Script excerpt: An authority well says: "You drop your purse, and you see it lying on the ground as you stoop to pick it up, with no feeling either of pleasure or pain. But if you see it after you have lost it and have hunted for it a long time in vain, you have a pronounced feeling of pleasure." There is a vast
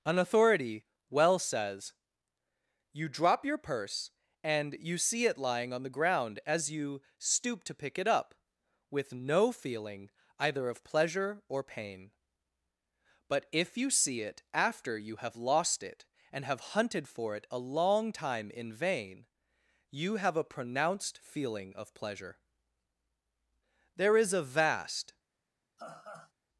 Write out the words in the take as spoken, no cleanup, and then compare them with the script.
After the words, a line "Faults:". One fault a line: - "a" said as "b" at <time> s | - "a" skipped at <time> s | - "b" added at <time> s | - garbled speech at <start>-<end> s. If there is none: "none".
An authority well says: "You drop your purse, and you see it lying on the ground as you stoop to pick it up, with no feeling either of pleasure or pain. But if you see it after you have lost it and have hunted for it a long time in vain, you have a pronounced feeling of pleasure." There is a vast
Faults:
none